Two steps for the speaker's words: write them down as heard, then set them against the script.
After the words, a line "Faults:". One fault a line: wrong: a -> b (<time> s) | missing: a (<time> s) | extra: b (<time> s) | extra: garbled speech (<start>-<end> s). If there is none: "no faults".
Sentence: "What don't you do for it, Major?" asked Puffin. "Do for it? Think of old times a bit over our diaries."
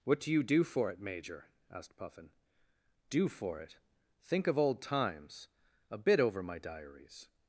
"What do you do for it, Major?" asked Puffin. "Do for it? Think of old times a bit over my diaries."
Faults:
wrong: don't -> do (0.2 s)
wrong: our -> my (6.4 s)